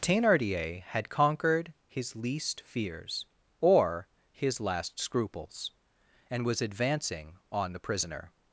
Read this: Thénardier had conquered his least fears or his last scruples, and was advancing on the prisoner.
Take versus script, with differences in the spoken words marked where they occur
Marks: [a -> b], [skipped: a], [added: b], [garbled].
Thénardier had conquered his least fears or his last scruples, and was advancing on the prisoner.